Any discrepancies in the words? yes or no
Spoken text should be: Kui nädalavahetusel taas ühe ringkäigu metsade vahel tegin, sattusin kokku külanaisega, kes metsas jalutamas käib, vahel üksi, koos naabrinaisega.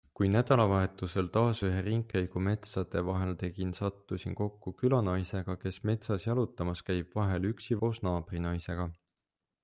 no